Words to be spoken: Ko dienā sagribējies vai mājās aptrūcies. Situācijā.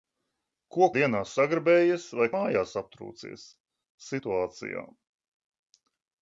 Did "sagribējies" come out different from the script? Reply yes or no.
no